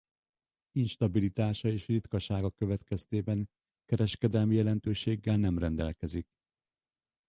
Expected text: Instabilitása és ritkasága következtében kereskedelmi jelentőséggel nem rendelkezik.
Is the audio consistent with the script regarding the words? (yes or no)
yes